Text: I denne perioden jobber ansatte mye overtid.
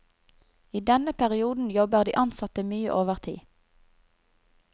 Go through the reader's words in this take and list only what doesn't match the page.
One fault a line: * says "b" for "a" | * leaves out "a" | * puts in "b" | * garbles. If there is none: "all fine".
* puts in "de"